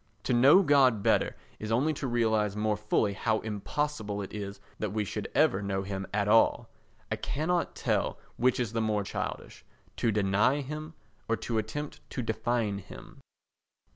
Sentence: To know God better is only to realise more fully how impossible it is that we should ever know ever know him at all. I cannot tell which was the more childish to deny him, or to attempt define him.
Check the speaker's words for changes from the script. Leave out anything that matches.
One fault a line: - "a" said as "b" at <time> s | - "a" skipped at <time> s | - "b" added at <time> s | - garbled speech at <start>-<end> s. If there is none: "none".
- "ever know" skipped at 5.8 s
- "was" said as "is" at 8.6 s
- "to" added at 12.1 s